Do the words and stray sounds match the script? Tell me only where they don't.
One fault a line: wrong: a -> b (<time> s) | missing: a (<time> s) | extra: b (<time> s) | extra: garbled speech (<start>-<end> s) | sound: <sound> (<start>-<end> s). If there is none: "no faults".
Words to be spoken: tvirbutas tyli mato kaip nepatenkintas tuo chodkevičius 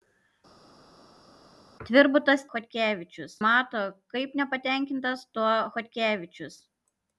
wrong: tyli -> chodkevičius (2.5 s)